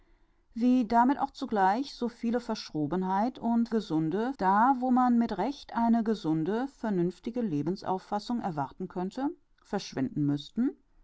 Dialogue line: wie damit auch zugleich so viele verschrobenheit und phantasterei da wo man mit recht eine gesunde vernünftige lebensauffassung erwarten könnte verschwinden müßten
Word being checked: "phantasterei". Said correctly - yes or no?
no